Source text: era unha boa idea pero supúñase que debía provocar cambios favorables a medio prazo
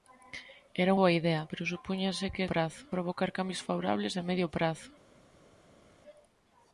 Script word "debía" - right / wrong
wrong